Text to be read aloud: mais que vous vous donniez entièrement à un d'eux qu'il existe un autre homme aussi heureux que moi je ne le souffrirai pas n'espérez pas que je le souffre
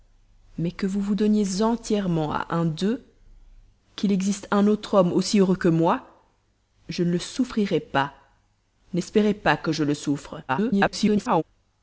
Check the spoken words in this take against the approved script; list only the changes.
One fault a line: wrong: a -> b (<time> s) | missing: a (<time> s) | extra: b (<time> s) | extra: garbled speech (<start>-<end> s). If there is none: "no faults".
extra: garbled speech (10.5-11.4 s)